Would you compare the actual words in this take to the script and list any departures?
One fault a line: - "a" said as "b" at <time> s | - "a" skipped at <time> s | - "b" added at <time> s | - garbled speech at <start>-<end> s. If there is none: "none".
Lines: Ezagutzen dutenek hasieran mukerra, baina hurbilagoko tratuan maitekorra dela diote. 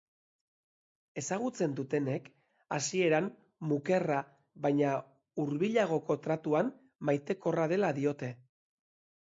none